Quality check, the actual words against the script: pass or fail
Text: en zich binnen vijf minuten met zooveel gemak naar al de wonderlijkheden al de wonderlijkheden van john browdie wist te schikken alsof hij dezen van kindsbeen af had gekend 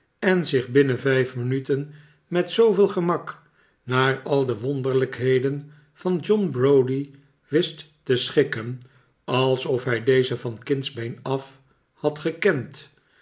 fail